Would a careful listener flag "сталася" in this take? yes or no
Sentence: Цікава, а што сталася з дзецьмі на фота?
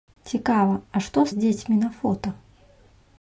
yes